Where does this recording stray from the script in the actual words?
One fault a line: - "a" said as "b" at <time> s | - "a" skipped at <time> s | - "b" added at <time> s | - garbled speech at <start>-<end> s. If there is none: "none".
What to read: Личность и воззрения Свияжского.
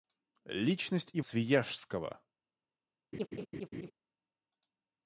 - "воззрения" skipped at 1.2 s